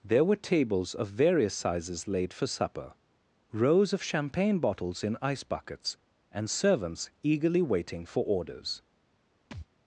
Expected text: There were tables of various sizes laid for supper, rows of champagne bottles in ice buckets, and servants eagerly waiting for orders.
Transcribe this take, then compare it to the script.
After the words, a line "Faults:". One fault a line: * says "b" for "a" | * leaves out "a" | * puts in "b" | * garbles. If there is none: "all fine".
There were tables of various sizes laid for supper, rows of champagne bottles in ice buckets, and servants eagerly waiting for orders.
Faults:
all fine